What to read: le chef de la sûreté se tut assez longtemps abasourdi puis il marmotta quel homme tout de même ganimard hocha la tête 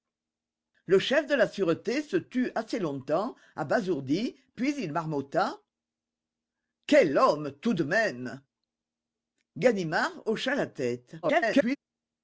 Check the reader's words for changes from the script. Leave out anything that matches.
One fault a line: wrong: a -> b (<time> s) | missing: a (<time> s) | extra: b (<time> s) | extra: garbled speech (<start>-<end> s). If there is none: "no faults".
extra: garbled speech (11.2-11.8 s)